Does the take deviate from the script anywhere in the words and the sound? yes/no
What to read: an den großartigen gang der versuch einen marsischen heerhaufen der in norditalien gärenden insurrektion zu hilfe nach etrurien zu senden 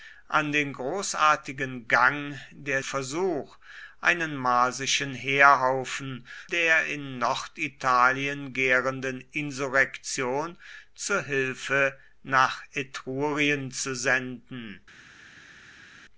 no